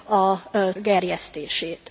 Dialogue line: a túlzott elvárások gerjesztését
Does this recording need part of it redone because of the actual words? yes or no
yes